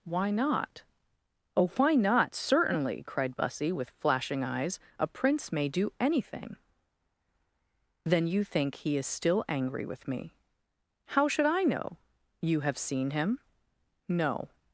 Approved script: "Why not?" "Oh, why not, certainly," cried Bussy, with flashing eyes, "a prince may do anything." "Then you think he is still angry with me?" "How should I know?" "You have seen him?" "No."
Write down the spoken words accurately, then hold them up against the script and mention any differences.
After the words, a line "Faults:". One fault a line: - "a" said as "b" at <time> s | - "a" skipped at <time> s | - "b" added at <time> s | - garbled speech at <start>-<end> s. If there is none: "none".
"Why not?" "Oh, why not, certainly," cried Bussy, with flashing eyes, "a prince may do anything." "Then you think he is still angry with me?" "How should I know?" "You have seen him?" "No."
Faults:
none